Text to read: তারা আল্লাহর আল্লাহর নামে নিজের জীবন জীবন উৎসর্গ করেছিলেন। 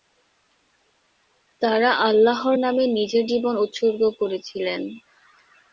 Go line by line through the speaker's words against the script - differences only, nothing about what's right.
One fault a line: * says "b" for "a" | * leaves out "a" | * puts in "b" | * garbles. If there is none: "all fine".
* leaves out "আল্লাহর"
* leaves out "জীবন"